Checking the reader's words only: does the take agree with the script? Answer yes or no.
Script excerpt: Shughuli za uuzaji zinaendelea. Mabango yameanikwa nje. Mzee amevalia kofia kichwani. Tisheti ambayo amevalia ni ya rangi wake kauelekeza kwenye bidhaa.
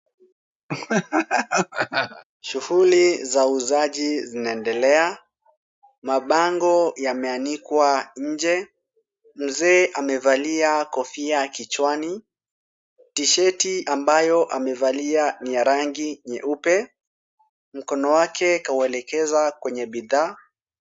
no